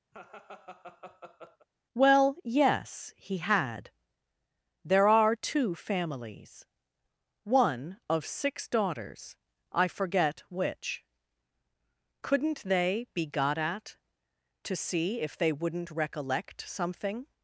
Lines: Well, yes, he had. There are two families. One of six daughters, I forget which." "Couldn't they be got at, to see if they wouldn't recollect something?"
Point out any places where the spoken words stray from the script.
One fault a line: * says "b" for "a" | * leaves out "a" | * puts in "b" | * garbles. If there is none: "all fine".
all fine